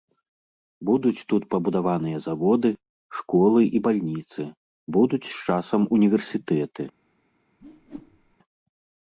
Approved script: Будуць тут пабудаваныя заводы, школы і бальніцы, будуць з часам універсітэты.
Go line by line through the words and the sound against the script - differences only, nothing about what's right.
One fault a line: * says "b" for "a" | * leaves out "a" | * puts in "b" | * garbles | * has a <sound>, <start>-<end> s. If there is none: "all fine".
* has a whoosh, 7.6-8.4 s